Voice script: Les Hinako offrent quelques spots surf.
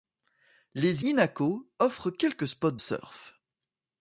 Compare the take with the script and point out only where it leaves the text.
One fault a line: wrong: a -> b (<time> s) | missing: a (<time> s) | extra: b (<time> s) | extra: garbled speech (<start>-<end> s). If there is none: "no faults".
no faults